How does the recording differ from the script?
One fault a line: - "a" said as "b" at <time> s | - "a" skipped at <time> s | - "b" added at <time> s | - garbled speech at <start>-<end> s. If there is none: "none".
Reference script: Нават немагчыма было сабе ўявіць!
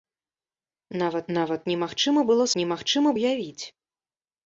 - "нават" added at 1.4 s
- "сабе" said as "немагчыма" at 2.6 s